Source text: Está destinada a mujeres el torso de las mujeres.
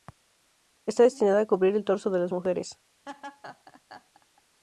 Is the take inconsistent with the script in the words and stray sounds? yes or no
yes